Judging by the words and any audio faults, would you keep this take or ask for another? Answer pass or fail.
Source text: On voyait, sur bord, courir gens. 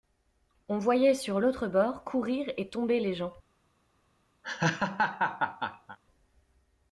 fail